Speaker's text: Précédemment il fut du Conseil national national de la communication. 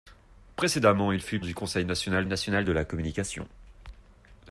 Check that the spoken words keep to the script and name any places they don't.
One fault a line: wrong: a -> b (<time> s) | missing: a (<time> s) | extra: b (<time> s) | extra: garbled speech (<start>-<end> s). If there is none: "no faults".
no faults